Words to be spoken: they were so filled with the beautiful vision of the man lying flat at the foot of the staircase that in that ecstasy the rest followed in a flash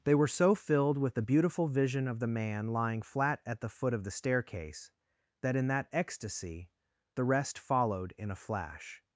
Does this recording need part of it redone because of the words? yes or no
no